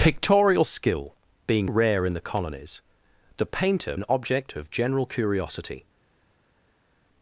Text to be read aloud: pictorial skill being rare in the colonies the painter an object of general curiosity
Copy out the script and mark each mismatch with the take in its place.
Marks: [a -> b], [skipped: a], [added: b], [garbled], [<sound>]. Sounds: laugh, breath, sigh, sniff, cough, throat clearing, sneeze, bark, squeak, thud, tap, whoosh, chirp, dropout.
pictorial skill being rare in the colonies the painter an object of general curiosity